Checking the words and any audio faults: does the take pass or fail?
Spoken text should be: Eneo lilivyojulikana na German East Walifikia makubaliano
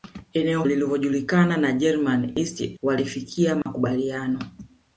fail